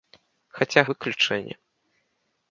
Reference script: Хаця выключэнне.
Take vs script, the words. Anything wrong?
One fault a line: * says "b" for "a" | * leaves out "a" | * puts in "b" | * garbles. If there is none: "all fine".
all fine